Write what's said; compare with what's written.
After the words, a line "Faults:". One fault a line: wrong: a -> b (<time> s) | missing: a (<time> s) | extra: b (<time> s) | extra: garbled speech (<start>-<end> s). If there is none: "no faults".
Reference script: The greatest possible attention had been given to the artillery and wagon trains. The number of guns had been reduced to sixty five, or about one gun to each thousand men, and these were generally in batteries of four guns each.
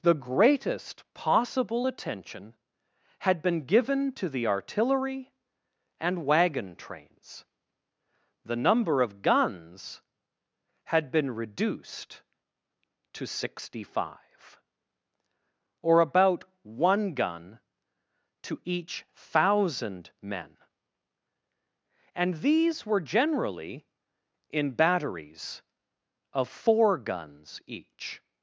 The greatest possible attention had been given to the artillery and wagon trains. The number of guns had been reduced to sixty five, or about one gun to each thousand men, and these were generally in batteries of four guns each.
Faults:
no faults